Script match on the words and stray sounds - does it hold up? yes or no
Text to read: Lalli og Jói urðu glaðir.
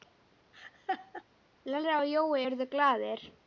no